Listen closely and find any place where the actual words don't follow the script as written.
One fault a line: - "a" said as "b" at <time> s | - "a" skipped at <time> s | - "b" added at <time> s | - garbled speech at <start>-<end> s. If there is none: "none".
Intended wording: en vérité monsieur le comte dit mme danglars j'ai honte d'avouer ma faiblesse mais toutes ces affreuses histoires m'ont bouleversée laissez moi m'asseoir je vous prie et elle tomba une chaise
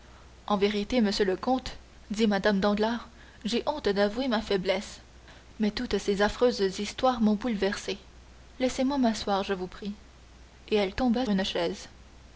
none